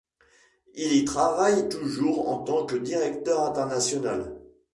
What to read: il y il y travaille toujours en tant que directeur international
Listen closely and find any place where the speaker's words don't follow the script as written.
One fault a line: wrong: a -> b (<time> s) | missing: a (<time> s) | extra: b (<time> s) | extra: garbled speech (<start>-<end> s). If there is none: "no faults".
missing: il y (1.1 s)